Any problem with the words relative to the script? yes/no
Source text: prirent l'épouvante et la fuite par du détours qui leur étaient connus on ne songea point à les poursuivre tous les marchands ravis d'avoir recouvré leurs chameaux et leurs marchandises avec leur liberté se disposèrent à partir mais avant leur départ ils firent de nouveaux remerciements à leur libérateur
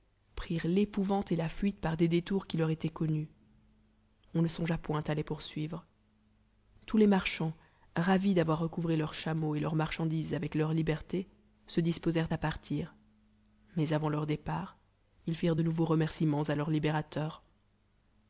yes